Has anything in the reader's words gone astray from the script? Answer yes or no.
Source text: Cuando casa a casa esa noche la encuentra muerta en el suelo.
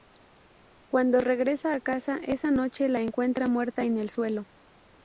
yes